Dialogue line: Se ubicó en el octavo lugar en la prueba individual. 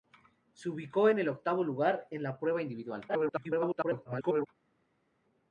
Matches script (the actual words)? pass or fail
fail